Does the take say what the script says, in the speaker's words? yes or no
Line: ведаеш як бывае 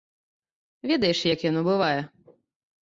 no